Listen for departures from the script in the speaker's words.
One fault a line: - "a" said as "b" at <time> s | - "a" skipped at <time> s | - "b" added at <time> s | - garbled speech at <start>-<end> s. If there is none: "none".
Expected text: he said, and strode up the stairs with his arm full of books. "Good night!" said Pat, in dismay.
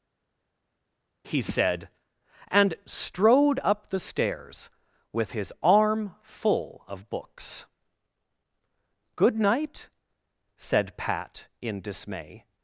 none